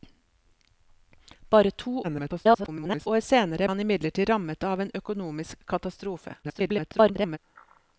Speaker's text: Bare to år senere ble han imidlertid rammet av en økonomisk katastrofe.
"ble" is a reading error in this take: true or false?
true